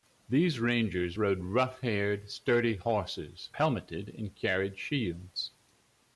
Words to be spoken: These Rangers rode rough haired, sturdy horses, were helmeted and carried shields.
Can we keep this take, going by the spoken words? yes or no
no